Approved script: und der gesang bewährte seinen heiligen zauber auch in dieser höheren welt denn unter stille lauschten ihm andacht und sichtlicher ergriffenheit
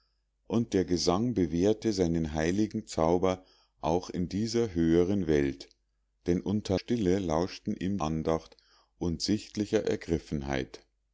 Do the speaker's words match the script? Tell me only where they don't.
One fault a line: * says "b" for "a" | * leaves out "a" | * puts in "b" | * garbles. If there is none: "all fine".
all fine